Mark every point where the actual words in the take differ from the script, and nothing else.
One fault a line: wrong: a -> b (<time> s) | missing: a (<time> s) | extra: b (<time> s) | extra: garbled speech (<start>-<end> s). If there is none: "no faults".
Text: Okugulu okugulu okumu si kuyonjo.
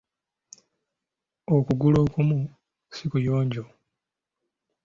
missing: okugulu (2.0 s)